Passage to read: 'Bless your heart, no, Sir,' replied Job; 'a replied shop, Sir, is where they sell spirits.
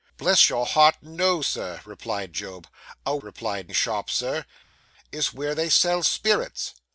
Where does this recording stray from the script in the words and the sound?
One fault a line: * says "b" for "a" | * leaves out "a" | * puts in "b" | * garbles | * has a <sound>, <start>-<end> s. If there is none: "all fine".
all fine